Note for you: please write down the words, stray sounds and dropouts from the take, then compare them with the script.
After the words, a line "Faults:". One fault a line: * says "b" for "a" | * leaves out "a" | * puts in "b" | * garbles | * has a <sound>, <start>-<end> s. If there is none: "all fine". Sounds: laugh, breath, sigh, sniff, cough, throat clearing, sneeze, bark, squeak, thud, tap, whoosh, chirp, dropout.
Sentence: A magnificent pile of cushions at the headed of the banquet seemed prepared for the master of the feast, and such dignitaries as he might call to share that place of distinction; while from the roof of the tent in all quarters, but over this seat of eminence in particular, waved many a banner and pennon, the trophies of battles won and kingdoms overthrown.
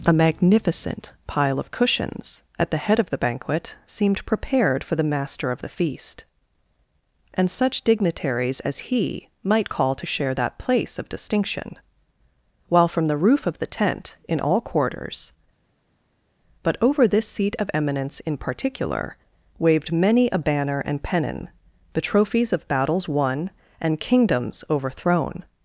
A magnificent pile of cushions at the head of the banquet seemed prepared for the master of the feast, and such dignitaries as he might call to share that place of distinction; while from the roof of the tent in all quarters, but over this seat of eminence in particular, waved many a banner and pennon, the trophies of battles won and kingdoms overthrown.
Faults:
* says "head" for "headed"